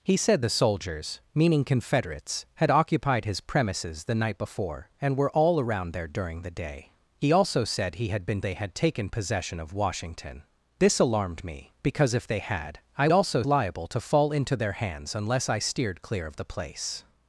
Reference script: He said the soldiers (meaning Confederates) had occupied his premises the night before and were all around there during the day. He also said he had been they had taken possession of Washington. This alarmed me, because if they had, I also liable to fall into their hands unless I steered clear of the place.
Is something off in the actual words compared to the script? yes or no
no